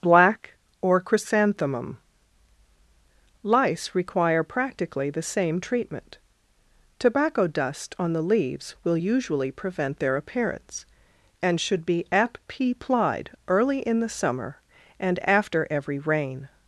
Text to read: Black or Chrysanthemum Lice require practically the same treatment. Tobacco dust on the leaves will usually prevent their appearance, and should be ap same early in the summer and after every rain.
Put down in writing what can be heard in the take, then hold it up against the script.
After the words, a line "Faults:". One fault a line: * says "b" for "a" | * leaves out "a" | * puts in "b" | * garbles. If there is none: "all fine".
Black or Chrysanthemum Lice require practically the same treatment. Tobacco dust on the leaves will usually prevent their appearance, and should be ap plied early in the summer and after every rain.
Faults:
* says "plied" for "same"